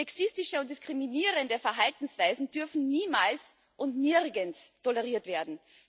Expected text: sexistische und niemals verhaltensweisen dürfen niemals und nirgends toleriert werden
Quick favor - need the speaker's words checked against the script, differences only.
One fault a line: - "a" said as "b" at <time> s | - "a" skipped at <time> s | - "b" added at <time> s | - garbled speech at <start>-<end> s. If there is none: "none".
- "niemals" said as "diskriminierende" at 0.7 s